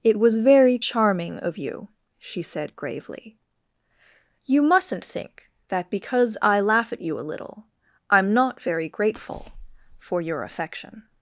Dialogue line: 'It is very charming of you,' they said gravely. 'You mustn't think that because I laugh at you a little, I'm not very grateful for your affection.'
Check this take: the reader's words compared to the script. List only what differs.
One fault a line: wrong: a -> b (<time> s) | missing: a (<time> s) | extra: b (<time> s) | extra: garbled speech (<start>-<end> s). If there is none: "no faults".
wrong: is -> was (0.2 s)
wrong: they -> she (2.2 s)